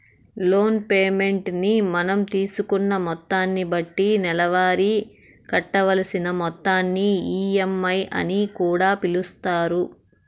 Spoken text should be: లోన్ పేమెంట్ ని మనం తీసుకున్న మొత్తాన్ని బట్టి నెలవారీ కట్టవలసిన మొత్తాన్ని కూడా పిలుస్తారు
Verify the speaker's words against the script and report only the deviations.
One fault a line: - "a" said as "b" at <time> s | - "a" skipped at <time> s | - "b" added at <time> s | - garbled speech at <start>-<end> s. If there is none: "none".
- "ఈ.ఎం.ఐ అని" added at 7.4 s